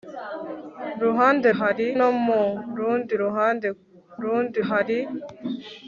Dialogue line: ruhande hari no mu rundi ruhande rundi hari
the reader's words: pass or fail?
pass